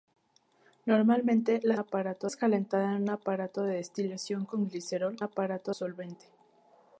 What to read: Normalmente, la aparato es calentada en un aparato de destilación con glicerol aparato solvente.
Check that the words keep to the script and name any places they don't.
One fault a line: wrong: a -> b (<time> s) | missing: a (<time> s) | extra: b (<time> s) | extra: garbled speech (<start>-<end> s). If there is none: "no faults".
no faults